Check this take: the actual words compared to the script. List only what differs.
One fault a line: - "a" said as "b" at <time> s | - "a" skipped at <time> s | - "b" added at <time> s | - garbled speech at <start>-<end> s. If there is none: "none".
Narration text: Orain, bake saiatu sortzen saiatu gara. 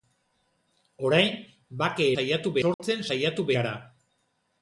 none